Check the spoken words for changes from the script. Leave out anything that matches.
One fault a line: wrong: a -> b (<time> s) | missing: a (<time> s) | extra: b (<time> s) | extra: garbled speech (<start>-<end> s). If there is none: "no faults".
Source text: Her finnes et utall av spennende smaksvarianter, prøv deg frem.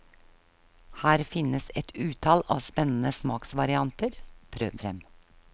missing: deg (4.8 s)